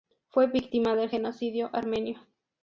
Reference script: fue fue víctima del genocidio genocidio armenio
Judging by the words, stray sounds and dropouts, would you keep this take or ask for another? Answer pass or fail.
fail